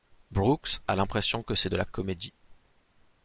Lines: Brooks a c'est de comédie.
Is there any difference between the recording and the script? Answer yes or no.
yes